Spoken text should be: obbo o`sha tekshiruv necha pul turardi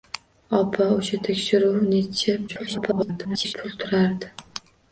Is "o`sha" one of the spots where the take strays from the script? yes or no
no